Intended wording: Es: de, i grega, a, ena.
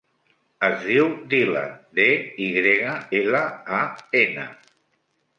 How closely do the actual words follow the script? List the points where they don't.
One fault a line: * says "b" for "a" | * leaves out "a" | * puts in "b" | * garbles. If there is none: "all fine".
* puts in "diu Dylan"
* puts in "ela"